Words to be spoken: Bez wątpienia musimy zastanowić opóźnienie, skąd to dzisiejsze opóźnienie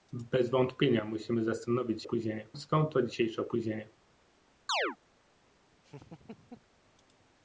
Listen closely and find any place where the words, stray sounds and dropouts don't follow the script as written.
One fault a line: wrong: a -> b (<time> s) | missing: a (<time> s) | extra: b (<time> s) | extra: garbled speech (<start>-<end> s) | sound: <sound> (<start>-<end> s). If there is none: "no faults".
sound: chirp (4.7-5.0 s)
sound: laugh (5.8-6.7 s)